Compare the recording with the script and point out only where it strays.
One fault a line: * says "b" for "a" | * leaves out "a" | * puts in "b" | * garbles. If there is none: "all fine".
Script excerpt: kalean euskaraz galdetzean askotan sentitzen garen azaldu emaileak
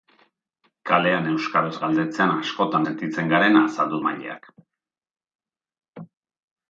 all fine